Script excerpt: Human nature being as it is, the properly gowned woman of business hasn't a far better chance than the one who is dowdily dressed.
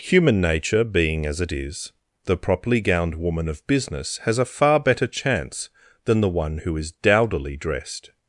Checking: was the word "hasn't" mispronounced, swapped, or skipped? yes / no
yes